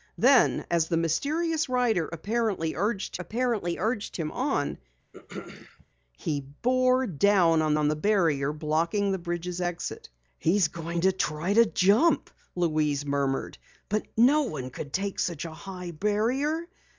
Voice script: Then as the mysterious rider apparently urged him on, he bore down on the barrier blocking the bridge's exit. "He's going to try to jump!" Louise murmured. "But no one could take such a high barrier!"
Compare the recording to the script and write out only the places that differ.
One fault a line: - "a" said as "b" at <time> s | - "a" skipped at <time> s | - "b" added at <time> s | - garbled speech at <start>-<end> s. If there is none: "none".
- "apparently urged" added at 3.2 s
- "on" added at 7.7 s